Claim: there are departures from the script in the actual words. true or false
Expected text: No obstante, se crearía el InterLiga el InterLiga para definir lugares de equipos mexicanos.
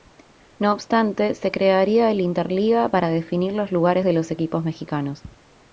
true